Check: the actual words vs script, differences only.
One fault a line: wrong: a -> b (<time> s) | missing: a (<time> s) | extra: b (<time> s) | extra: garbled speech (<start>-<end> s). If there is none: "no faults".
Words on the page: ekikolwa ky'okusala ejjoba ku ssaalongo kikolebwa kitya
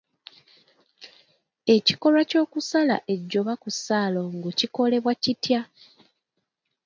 no faults